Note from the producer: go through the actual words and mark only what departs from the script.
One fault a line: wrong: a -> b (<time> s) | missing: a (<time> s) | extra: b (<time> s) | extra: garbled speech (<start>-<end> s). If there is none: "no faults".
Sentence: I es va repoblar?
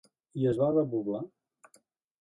no faults